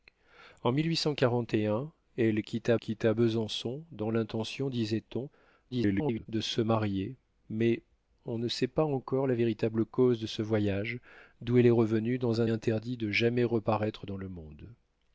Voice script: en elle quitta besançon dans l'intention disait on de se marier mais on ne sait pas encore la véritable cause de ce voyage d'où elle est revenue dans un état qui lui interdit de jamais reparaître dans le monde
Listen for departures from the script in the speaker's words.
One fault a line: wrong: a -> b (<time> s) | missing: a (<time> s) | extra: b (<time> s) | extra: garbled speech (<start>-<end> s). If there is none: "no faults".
extra: quitta (2.7 s)
extra: garbled speech (5.7-6.3 s)
missing: état qui lui (12.5 s)